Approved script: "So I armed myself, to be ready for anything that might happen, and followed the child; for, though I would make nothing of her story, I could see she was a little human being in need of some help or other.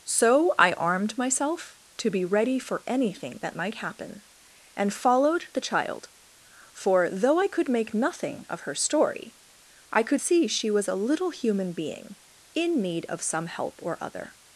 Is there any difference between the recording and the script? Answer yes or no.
yes